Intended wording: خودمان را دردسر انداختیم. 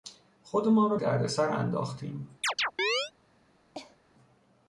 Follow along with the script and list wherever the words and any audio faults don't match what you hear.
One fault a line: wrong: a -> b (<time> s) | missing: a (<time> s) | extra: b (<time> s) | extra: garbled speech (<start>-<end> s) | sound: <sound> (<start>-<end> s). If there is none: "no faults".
sound: chirp (2.4-3.1 s)
sound: cough (3.7-4.0 s)